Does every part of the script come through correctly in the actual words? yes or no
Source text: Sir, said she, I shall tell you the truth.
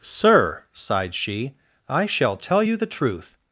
no